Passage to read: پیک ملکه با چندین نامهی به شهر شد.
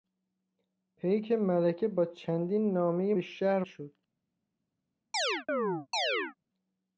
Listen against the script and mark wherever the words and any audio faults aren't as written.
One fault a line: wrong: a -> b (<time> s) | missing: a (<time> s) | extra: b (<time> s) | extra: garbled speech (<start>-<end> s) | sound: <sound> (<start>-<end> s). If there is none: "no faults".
sound: chirp (5.1-6.4 s)